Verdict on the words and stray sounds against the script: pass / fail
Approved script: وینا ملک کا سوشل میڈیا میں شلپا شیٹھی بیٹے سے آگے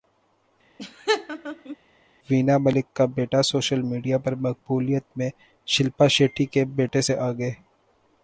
fail